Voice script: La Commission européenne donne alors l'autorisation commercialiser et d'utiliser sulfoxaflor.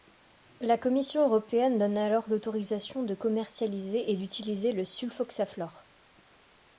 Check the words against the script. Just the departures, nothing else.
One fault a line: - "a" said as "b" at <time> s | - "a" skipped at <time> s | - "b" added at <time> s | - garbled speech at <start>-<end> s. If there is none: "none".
- "de" added at 3.0 s
- "le" added at 4.7 s